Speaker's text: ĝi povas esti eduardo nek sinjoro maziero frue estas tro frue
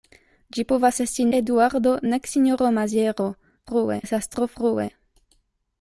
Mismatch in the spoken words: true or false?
false